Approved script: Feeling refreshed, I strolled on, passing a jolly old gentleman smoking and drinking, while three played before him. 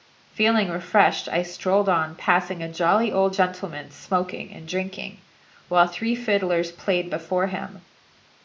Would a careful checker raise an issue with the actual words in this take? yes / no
yes